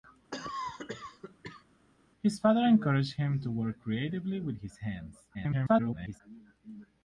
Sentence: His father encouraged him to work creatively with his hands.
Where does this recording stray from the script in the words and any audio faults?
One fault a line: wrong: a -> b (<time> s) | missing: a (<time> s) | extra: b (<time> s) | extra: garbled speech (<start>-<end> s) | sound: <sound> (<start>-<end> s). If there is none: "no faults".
sound: cough (0.3-1.6 s)
extra: garbled speech (5.3-6.2 s)